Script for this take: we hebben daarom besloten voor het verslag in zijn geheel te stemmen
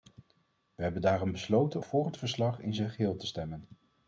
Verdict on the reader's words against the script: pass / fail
pass